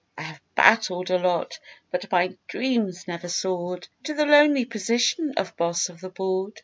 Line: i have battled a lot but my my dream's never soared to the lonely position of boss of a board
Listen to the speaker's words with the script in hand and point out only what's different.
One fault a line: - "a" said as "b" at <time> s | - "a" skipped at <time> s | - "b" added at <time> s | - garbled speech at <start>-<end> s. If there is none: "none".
- "my" skipped at 2.4 s
- "a" said as "the" at 6.0 s